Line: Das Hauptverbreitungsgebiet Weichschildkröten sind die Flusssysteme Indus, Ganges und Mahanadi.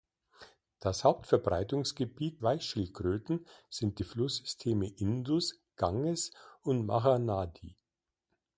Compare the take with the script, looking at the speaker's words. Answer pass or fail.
pass